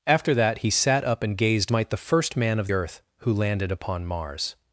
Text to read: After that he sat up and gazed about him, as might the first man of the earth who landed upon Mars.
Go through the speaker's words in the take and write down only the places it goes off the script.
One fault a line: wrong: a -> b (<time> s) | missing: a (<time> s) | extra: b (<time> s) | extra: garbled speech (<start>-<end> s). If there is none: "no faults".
missing: about him as (1.7 s)
missing: the (2.7 s)